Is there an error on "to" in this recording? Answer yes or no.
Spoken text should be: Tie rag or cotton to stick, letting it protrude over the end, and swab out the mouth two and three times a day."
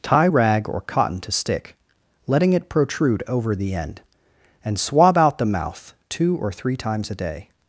no